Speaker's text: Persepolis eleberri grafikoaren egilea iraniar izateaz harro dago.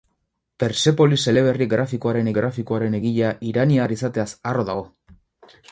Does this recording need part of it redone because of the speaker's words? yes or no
yes